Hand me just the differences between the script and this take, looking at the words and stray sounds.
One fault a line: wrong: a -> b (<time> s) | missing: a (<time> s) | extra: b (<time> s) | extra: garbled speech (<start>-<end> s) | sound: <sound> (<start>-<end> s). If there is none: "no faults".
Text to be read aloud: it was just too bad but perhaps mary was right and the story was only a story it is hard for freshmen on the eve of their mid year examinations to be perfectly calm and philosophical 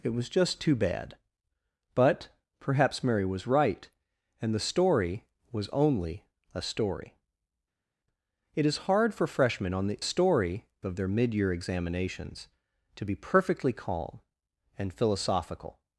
wrong: eve -> story (10.0 s)